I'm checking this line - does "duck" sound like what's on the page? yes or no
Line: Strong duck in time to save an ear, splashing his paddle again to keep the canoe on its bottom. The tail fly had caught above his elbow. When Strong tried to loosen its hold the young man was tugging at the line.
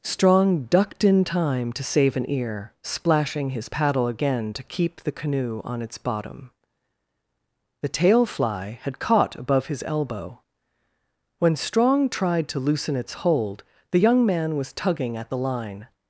no